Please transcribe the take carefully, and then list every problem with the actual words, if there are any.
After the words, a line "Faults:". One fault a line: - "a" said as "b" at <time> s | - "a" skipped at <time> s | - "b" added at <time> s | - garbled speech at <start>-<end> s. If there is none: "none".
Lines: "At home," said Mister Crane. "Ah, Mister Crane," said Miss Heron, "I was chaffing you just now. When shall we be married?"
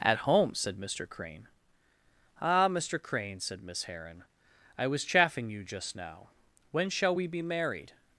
"At home," said Mister Crane. "Ah, Mister Crane," said Miss Heron, "I was chaffing you just now. When shall we be married?"
Faults:
none